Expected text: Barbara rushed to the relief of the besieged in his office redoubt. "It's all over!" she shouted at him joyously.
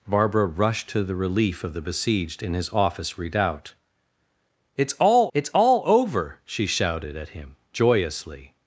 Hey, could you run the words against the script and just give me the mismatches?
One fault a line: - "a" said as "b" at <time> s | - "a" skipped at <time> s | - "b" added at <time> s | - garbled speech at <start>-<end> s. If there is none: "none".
- "it's all" added at 5.3 s